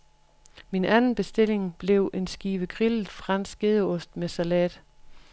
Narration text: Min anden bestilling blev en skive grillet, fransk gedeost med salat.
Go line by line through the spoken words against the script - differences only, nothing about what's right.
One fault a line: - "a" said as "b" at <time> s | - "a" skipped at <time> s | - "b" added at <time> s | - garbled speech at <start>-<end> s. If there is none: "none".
none